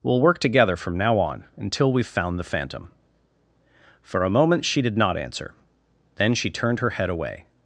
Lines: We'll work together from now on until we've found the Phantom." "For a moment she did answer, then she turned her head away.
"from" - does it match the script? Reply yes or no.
yes